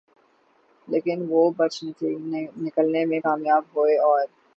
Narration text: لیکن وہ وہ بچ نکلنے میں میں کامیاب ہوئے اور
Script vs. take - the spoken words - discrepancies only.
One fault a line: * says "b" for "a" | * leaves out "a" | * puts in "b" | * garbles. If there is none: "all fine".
* leaves out "وہ"
* leaves out "میں"